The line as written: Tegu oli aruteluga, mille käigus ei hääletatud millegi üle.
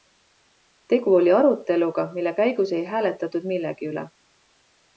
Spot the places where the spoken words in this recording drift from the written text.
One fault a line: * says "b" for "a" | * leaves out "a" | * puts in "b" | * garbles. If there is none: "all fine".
all fine